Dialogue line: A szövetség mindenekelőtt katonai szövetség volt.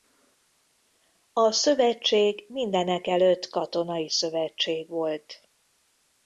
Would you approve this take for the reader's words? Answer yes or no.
yes